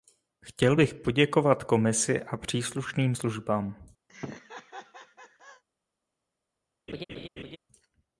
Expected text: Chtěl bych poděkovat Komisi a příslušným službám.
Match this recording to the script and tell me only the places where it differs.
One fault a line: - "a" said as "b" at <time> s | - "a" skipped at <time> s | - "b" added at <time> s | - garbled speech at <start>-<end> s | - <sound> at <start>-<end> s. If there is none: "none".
- laugh at 4.1-5.6 s
- laugh at 6.9-7.6 s